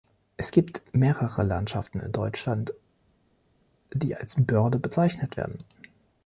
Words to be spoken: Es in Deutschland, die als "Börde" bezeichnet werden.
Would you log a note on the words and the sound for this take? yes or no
yes